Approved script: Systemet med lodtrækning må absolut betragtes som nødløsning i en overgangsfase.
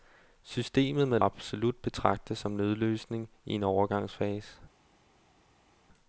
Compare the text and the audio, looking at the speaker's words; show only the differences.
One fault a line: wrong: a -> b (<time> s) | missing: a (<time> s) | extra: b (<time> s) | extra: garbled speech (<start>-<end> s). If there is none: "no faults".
missing: lodtrækning må (1.2 s)